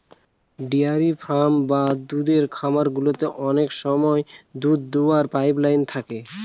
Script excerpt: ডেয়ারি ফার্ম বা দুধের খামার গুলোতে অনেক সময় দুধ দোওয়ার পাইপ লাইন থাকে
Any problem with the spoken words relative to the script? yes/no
no